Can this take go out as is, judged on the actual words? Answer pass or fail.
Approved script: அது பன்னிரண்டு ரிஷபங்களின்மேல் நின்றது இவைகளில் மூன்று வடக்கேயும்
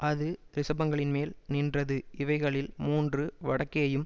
fail